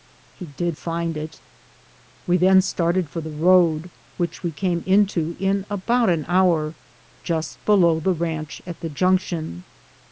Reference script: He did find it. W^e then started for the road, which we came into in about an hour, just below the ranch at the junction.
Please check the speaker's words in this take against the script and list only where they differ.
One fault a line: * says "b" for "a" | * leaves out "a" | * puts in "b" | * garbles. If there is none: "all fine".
all fine